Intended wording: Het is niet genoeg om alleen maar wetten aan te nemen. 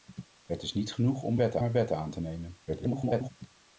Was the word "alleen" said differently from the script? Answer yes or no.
yes